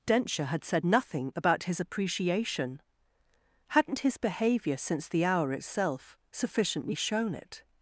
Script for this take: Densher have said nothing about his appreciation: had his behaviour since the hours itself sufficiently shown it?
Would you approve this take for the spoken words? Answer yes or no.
no